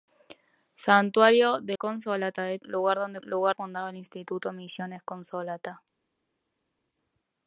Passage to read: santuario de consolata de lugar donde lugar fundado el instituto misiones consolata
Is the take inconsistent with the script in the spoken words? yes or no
no